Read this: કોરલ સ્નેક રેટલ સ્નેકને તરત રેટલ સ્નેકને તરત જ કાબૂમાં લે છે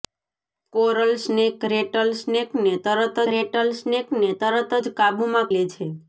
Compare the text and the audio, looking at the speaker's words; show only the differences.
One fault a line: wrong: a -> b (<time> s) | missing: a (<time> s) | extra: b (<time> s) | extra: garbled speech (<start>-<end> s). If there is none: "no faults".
no faults